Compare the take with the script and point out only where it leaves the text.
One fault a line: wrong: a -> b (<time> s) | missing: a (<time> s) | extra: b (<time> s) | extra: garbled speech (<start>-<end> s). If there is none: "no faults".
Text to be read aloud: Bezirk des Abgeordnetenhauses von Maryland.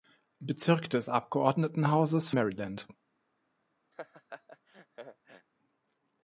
missing: von (2.3 s)